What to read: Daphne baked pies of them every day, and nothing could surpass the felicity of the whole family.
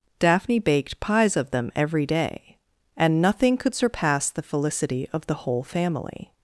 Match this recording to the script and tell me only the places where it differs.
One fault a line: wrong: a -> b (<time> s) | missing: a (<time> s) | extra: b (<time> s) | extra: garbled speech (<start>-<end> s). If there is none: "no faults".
no faults